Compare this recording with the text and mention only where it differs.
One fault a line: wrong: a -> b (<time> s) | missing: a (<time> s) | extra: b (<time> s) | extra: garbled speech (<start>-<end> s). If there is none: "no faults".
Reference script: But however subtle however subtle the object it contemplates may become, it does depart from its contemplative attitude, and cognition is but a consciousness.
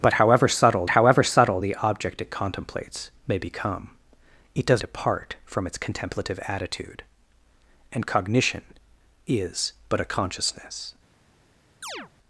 no faults